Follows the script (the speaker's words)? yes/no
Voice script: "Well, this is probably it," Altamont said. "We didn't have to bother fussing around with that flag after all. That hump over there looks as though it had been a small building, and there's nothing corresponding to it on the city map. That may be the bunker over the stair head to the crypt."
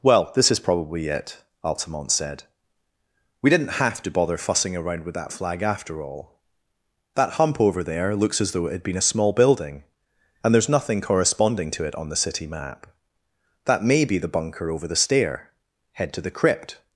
yes